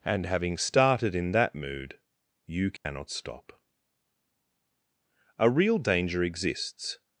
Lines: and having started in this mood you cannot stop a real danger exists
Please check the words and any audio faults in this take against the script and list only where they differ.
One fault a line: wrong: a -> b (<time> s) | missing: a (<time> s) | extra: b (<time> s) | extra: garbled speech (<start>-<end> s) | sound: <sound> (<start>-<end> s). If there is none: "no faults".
wrong: this -> that (1.3 s)
sound: dropout (2.8-2.9 s)